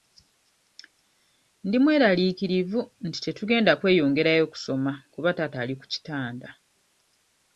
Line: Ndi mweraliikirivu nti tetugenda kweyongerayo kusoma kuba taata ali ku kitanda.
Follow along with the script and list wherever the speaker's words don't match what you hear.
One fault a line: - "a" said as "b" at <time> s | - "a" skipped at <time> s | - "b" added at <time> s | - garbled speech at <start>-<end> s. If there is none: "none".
none